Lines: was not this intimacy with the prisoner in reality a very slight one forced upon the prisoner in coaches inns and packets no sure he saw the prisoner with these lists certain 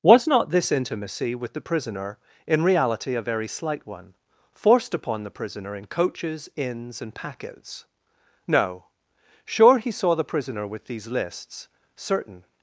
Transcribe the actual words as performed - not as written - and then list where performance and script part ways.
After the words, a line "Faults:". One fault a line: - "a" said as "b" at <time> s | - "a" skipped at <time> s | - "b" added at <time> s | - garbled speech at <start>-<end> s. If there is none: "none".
was not this intimacy with the prisoner in reality a very slight one forced upon the prisoner in coaches inns and packets no sure he saw the prisoner with these lists certain
Faults:
none